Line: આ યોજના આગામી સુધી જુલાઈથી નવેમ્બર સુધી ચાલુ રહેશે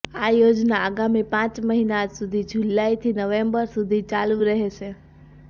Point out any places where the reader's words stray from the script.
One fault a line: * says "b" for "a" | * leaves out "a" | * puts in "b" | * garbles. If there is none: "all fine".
* puts in "પાંચ મહિના"